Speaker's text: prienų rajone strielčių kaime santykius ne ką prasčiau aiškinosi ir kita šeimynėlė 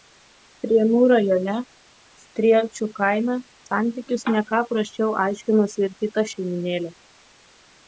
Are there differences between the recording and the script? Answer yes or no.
no